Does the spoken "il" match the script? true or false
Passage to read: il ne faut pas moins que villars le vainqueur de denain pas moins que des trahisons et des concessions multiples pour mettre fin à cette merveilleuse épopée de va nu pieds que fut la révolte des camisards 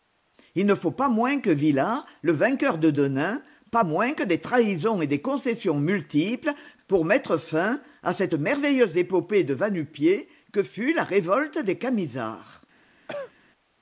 true